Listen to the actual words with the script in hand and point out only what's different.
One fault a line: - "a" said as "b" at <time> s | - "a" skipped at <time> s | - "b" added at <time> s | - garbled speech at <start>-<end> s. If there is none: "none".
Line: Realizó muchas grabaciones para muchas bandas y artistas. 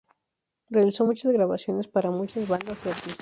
none